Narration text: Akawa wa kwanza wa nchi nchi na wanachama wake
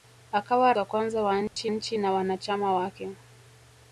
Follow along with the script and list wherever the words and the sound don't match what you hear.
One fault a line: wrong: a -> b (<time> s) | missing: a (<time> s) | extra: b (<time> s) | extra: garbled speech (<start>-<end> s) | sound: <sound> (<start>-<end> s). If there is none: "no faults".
sound: dropout (1.5-1.6 s)